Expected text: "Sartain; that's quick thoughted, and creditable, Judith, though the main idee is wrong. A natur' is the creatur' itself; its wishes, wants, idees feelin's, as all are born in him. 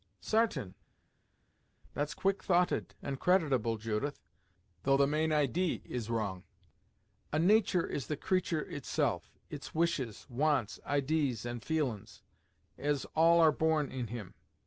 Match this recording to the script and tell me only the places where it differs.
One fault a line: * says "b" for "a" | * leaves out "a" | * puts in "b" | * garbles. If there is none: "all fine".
* puts in "and"